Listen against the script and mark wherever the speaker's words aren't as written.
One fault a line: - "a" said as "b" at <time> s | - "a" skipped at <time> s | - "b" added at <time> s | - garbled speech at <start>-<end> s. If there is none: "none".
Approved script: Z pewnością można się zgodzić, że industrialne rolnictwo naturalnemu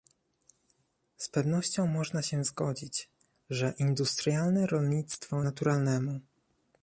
none